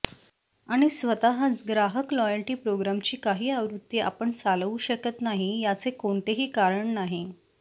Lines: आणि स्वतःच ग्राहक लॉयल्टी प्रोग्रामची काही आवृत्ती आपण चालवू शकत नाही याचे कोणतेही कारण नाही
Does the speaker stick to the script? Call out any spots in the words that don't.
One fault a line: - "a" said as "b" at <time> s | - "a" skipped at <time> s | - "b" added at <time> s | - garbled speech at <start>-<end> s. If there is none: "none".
none